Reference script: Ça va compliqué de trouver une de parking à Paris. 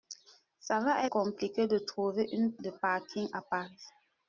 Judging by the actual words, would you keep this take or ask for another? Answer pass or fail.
pass